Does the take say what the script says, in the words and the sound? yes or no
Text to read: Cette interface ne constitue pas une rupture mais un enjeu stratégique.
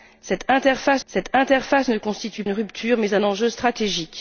no